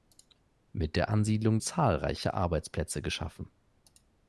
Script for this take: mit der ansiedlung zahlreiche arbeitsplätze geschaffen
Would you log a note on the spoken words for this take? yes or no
no